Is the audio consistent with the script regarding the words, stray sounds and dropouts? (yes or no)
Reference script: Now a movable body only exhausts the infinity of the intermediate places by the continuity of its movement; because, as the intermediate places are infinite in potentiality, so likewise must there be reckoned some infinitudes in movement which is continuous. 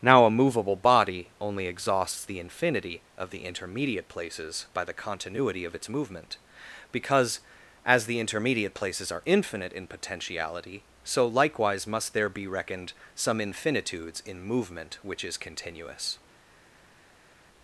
yes